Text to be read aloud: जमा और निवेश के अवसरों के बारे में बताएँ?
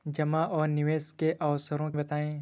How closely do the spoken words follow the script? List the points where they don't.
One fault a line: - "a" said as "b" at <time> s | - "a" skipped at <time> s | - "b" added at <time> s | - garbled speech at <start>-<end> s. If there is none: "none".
- "के बारे में" skipped at 1.9 s